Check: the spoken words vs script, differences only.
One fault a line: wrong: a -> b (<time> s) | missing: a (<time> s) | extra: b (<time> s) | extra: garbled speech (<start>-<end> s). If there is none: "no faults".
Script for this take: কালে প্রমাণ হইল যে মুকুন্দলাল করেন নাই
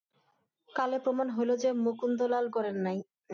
no faults